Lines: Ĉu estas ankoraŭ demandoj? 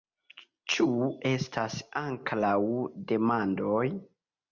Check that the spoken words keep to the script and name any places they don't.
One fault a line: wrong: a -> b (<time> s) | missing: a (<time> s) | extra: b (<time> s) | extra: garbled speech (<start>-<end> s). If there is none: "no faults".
no faults